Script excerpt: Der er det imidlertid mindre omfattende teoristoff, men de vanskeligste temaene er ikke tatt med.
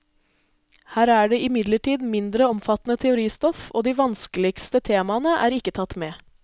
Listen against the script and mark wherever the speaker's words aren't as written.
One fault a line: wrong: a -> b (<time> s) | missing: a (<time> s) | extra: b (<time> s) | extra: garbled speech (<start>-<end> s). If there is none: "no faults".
wrong: Der -> Her (0.9 s)
wrong: men -> og (3.7 s)